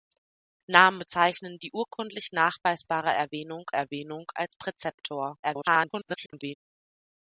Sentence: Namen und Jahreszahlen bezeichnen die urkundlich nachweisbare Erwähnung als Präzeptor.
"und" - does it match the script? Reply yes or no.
no